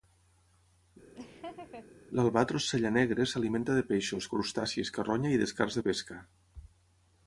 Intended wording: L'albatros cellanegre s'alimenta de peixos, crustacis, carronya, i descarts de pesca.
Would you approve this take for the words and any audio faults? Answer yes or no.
no